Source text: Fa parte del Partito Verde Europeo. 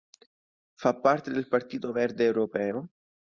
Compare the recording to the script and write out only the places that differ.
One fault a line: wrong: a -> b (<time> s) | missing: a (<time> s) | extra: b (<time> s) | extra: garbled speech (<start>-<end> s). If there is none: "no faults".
no faults